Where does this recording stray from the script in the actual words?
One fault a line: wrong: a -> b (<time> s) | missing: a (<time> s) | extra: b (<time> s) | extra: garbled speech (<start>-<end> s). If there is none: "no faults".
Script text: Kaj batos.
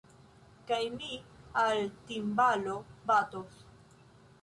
extra: mi al timbalo (0.9 s)